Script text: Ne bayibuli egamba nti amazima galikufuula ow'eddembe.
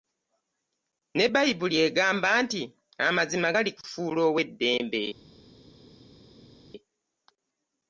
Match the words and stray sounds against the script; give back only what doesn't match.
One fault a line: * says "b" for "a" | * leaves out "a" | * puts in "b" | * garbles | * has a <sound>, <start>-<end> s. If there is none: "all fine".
all fine